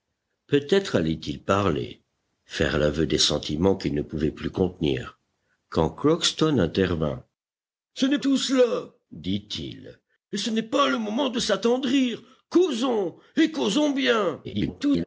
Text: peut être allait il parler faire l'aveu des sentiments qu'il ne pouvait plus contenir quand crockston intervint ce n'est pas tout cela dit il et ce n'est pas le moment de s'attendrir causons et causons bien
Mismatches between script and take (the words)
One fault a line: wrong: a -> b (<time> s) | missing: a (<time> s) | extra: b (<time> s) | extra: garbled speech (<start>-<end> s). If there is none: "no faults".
missing: pas (8.2 s)
extra: garbled speech (14.4-15.0 s)